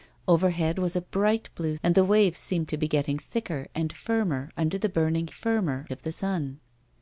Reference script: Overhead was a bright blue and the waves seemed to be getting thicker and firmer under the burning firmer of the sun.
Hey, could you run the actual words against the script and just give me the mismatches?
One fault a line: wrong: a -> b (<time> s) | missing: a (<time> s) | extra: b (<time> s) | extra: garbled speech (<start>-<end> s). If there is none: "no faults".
no faults